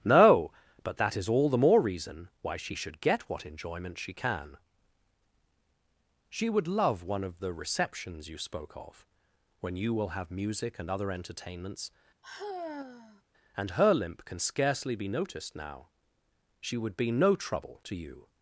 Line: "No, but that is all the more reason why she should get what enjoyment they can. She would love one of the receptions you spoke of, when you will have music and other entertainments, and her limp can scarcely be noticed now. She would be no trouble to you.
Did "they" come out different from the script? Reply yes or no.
yes